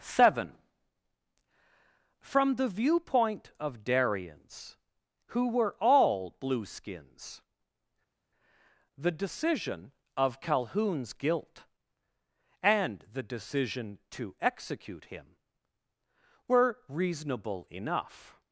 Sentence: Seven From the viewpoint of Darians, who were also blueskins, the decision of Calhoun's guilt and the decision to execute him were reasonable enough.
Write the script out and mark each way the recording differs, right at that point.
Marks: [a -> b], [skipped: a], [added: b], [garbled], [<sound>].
Seven From the viewpoint of Darians, who were [also -> all] blueskins, the decision of Calhoun's guilt and the decision to execute him were reasonable enough.